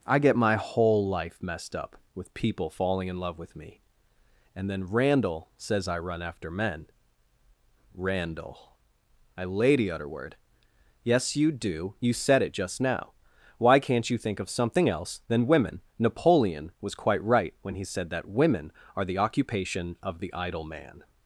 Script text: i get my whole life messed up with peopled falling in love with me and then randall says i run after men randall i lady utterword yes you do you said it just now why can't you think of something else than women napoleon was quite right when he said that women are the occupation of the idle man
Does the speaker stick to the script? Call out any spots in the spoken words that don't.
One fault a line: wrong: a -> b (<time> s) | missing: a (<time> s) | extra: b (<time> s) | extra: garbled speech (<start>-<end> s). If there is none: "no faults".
wrong: peopled -> people (2.3 s)